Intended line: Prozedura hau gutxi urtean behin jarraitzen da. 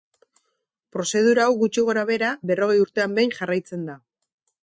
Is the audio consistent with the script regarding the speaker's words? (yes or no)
no